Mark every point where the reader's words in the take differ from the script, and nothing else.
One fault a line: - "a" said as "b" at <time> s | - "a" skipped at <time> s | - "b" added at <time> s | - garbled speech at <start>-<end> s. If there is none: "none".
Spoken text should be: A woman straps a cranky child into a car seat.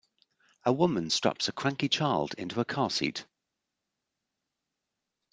none